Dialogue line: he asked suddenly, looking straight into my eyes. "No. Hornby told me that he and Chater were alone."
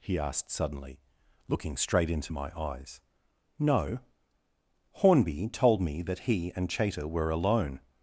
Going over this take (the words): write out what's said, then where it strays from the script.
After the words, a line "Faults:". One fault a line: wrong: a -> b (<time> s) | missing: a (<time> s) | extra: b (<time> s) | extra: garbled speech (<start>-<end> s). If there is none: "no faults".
he asked suddenly, looking straight into my eyes. "No. Hornby told me that he and Chater were alone."
Faults:
no faults